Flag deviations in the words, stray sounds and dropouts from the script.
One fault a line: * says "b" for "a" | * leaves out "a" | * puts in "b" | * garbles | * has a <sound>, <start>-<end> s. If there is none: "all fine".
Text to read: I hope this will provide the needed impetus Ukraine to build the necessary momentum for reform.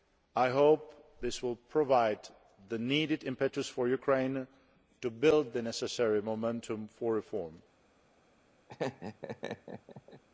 * puts in "for"
* has a laugh, 8.7-10.2 s